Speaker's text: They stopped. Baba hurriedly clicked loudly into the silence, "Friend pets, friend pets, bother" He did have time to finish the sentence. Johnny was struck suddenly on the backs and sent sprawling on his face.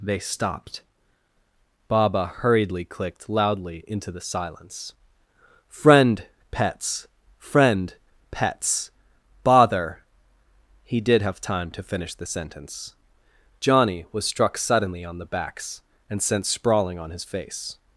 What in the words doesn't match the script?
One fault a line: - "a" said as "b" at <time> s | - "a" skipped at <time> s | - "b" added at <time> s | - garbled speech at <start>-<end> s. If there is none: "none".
none